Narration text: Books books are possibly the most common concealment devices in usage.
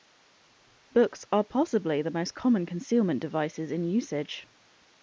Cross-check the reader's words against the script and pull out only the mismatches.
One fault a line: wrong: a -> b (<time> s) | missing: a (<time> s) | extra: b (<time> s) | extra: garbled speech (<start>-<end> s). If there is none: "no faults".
missing: books (1.2 s)